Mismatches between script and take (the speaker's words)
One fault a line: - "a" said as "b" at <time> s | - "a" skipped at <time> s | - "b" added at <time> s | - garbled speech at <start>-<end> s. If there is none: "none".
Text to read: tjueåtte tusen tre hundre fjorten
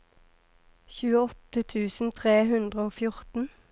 - "og" added at 2.9 s